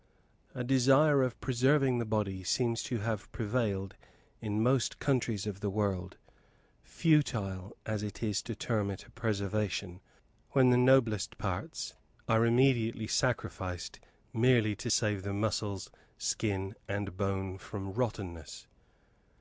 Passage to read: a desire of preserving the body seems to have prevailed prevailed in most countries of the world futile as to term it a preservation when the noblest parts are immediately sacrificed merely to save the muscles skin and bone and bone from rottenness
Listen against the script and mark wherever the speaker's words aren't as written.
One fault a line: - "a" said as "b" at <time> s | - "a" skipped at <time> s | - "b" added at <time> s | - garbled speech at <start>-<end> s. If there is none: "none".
- "prevailed" skipped at 4.0 s
- "it is" added at 8.0 s
- "and bone" skipped at 17.6 s